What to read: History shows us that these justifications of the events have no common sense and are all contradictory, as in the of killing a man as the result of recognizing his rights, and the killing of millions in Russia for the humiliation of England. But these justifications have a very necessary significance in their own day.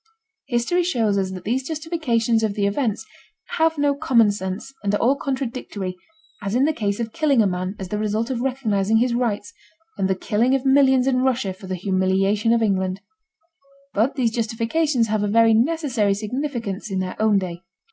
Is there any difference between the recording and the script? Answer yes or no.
yes